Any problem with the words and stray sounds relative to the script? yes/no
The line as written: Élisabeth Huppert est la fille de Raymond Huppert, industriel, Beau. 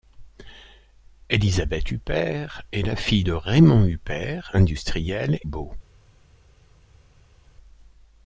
no